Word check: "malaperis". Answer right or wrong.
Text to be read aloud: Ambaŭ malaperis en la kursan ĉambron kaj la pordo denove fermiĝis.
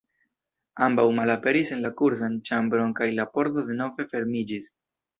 right